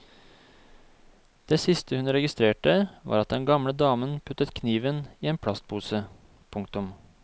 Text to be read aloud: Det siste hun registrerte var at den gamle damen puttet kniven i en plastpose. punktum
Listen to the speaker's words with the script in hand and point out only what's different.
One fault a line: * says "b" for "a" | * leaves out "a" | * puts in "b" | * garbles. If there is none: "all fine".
all fine